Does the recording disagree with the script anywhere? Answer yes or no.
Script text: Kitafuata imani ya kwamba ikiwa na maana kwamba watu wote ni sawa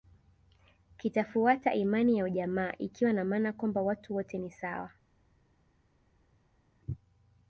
yes